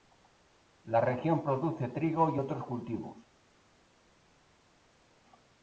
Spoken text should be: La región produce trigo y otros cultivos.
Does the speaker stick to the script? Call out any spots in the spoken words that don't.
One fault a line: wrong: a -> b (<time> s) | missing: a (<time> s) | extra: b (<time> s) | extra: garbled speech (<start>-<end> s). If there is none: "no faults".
no faults